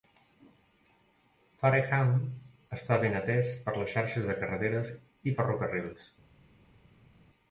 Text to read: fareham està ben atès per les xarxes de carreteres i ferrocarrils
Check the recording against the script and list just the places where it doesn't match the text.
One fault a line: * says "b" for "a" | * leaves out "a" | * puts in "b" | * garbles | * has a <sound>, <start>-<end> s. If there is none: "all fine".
all fine